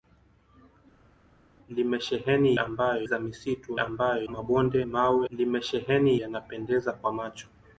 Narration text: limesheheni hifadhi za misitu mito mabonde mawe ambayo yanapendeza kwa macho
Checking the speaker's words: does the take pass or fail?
fail